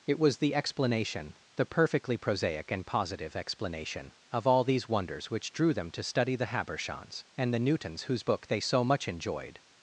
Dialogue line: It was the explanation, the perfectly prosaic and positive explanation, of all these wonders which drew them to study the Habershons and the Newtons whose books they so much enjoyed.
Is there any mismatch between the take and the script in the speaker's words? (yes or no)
yes